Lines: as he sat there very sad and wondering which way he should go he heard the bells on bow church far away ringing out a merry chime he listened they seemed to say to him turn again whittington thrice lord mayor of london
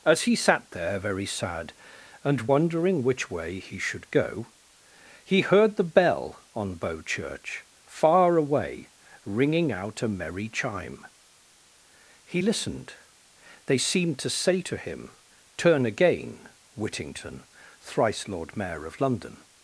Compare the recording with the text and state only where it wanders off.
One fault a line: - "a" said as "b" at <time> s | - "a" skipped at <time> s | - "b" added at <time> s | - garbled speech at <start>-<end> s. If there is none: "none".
- "bells" said as "bell" at 5.8 s